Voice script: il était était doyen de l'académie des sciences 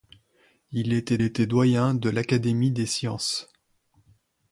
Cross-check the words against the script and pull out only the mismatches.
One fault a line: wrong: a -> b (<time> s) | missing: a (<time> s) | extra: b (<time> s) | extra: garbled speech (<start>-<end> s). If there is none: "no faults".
no faults